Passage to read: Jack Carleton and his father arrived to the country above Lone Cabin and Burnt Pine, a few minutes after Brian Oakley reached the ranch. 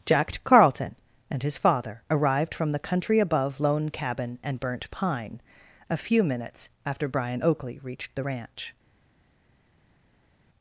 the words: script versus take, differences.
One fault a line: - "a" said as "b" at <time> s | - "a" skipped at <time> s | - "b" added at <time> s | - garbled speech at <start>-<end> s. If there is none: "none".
- "to" said as "from" at 2.5 s